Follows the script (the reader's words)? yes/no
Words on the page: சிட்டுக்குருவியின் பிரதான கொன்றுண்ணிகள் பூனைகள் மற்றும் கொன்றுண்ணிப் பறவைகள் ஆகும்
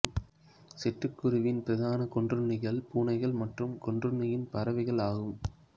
yes